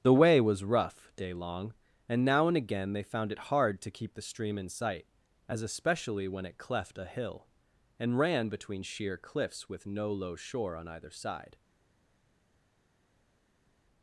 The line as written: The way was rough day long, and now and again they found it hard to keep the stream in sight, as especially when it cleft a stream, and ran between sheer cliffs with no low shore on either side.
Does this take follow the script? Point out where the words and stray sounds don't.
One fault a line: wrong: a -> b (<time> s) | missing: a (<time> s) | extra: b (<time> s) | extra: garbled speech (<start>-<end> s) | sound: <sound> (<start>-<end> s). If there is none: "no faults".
wrong: stream -> hill (7.0 s)